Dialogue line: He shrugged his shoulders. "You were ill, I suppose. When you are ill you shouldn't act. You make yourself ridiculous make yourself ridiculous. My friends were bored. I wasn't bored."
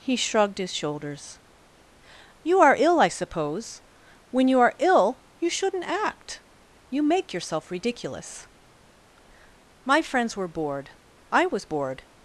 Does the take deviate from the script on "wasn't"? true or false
true